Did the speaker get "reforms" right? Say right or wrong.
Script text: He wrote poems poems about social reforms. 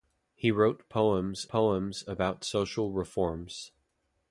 right